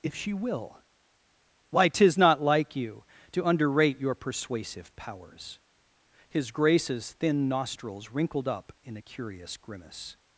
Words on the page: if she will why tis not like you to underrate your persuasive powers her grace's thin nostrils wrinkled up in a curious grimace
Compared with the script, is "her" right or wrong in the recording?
wrong